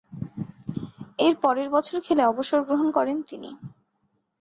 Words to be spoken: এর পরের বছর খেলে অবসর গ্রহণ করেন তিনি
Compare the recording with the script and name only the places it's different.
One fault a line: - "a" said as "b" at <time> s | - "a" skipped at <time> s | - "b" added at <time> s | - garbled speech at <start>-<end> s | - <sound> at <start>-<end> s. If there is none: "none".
none